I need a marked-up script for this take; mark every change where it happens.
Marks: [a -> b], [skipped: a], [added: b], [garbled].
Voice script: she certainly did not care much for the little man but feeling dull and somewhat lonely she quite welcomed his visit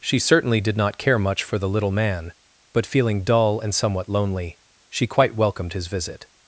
she certainly did not care much for the little man but feeling dull and somewhat lonely she quite welcomed his visit